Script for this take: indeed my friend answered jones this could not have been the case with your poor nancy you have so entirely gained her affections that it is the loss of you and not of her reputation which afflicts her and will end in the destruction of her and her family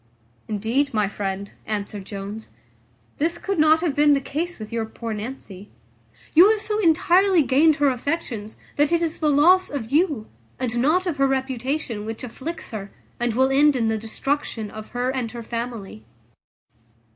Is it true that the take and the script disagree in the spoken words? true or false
false